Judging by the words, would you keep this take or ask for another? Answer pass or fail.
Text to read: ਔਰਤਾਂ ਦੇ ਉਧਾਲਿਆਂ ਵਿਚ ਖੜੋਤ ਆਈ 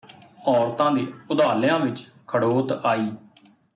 pass